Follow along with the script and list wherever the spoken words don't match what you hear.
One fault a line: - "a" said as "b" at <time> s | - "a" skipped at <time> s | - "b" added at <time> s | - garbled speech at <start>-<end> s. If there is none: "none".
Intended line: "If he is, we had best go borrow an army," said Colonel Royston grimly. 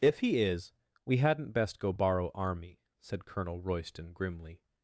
- "had" said as "hadn't" at 1.2 s
- "an" skipped at 2.3 s